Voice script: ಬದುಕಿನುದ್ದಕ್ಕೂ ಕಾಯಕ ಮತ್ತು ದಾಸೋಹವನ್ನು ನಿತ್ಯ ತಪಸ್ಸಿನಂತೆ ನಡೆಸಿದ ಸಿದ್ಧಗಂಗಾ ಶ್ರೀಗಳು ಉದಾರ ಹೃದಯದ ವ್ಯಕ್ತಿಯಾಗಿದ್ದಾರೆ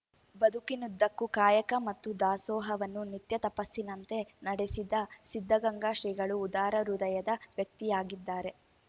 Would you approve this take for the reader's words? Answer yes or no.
yes